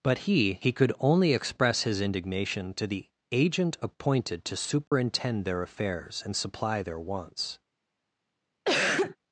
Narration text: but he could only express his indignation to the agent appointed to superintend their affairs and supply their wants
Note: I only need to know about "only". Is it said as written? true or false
true